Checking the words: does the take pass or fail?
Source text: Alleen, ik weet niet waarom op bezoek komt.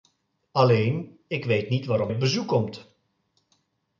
pass